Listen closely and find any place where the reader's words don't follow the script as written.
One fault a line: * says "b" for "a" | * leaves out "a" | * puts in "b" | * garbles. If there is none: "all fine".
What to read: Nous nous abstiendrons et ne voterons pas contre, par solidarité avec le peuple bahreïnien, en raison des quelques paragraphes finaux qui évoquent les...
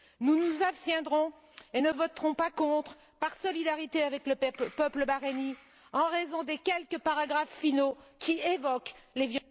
all fine